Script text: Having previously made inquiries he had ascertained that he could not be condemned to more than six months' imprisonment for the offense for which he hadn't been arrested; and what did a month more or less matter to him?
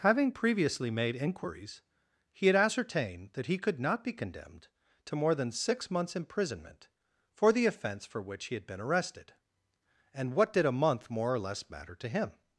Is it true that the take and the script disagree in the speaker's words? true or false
true